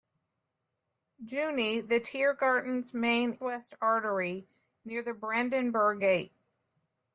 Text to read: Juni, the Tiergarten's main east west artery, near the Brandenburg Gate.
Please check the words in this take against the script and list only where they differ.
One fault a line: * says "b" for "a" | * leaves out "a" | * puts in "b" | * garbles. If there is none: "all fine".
* leaves out "east"